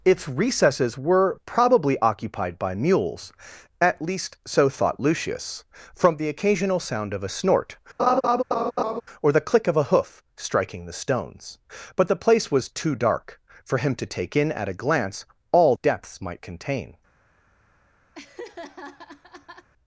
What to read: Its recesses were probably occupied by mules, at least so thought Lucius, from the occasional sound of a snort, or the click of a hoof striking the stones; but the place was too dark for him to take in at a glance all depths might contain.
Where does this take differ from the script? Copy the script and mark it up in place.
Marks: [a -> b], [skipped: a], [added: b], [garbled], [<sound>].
Its recesses were probably occupied by mules, at least so thought Lucius, from the occasional sound of a snort, [laugh] or the click of a hoof striking the stones; but the place was too dark for him to take in at a glance all depths might contain. [laugh]